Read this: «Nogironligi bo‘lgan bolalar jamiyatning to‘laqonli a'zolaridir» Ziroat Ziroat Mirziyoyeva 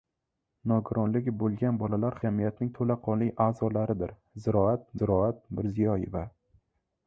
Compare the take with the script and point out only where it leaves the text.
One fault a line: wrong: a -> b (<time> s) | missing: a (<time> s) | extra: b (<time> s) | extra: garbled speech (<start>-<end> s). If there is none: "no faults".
no faults